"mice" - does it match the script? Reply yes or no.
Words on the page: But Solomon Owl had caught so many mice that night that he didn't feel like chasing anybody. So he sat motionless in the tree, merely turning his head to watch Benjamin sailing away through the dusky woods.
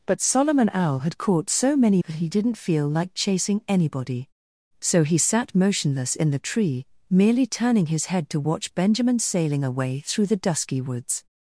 no